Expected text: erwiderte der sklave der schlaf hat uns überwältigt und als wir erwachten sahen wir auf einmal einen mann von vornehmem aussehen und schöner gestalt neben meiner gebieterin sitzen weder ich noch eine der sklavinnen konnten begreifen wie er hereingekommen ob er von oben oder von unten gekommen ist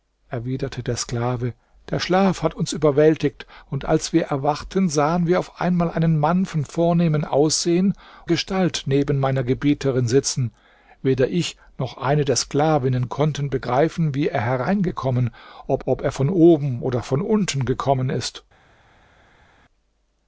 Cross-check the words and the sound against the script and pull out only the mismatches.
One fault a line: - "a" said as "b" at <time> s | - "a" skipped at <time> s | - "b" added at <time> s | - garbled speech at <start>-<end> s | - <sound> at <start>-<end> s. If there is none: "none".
- "und schöner" skipped at 7.9 s
- "ob" added at 15.9 s